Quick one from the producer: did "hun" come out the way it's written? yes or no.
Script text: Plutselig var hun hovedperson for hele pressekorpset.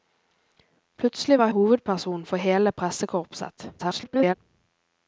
no